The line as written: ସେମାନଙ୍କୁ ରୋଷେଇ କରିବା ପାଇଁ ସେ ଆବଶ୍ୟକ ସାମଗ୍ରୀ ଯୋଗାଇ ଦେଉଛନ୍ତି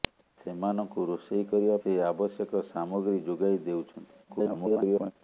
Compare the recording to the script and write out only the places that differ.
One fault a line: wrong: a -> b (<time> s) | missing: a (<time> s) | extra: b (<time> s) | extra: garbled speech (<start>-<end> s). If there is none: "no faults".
missing: ପାଇଁ (1.8 s)
extra: garbled speech (4.3-5.1 s)